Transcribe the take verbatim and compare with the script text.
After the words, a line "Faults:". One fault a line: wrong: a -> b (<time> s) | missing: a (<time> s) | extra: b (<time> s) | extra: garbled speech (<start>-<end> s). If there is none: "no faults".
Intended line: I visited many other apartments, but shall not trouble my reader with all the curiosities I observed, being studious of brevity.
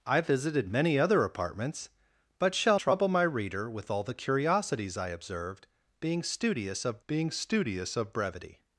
I visited many other apartments, but shall trouble my reader with all the curiosities I observed, being studious of being studious of brevity.
Faults:
missing: not (2.8 s)
extra: being studious of (7.0 s)